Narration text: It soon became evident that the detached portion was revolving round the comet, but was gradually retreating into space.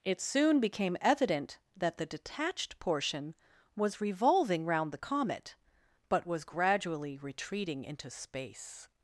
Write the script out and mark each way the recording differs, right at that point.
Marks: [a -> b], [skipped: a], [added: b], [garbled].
It soon became evident that the detached portion was revolving round the comet, but was gradually retreating into space.